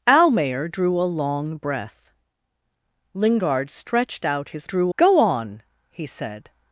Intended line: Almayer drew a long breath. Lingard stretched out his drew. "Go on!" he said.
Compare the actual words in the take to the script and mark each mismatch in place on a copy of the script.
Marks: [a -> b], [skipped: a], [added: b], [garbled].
Almayer drew a long breath. Lingard stretched out his drew. "Go on!" he said.